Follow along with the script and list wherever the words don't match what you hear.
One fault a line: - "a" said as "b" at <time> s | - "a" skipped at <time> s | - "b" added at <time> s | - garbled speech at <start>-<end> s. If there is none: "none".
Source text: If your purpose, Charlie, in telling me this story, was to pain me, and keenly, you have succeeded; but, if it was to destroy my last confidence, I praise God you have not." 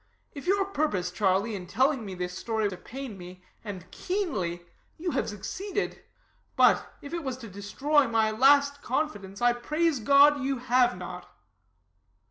- "was" skipped at 2.7 s